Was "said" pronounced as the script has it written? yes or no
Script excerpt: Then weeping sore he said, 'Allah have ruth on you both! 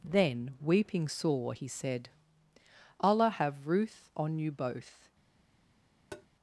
yes